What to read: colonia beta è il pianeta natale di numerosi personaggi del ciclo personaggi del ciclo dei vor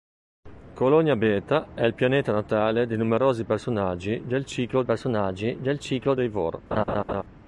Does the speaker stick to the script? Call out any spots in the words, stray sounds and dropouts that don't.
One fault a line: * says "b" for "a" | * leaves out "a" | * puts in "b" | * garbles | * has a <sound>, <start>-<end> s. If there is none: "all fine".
* has a laugh, 6.7-7.2 s